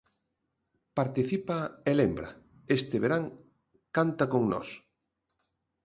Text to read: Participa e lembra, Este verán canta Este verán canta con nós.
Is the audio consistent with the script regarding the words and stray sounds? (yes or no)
no